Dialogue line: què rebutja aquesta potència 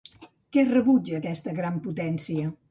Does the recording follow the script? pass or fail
fail